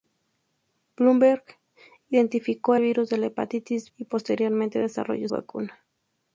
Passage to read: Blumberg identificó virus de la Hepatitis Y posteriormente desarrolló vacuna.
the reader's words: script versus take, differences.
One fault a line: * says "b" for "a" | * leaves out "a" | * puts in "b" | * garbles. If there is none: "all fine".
all fine